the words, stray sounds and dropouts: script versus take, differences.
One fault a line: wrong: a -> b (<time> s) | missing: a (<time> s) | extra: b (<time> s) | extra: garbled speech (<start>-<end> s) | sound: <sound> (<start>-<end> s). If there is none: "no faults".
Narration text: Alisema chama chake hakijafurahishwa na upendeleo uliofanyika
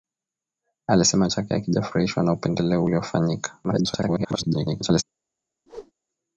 missing: chama (1.3 s)
extra: garbled speech (3.6-5.0 s)
sound: whoosh (5.7-5.9 s)